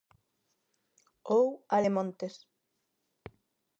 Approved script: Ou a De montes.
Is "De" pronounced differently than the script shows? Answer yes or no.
no